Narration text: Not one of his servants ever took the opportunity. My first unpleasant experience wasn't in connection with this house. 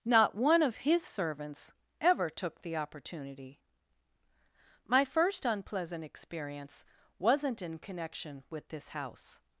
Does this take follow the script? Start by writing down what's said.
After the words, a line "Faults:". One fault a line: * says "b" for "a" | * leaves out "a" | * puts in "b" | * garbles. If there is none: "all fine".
Not one of his servants ever took the opportunity. My first unpleasant experience wasn't in connection with this house.
Faults:
all fine